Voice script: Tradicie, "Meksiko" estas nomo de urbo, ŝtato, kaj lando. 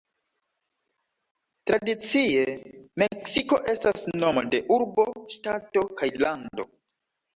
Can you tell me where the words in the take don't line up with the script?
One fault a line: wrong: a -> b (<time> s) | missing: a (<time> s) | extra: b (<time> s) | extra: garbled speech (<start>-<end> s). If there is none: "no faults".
no faults